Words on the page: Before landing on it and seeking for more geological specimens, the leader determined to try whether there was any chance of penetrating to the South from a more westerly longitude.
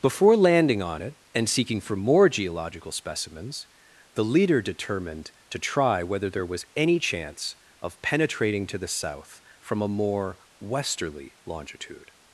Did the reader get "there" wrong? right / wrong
right